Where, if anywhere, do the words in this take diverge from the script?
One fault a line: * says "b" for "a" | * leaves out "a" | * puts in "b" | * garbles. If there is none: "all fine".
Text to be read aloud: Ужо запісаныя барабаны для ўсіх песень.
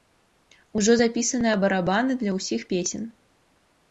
all fine